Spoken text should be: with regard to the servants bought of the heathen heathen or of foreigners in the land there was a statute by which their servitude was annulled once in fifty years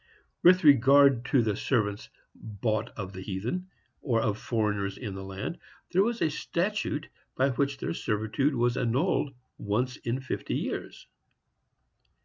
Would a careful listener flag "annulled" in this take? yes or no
no